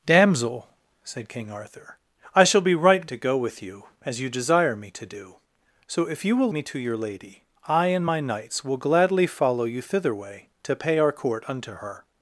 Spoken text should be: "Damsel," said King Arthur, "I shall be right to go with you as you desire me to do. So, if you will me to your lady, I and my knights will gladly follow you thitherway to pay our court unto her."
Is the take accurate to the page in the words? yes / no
yes